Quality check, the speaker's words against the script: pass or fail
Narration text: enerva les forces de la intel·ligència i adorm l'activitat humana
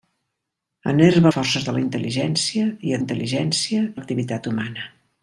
fail